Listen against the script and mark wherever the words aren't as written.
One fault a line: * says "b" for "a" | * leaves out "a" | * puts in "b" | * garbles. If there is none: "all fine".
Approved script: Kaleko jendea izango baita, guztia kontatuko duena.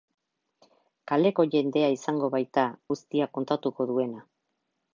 all fine